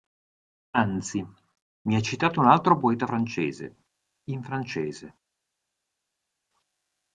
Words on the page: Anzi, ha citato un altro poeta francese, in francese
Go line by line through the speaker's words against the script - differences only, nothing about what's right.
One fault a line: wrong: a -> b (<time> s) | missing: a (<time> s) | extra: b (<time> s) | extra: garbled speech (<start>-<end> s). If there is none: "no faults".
extra: mi (1.8 s)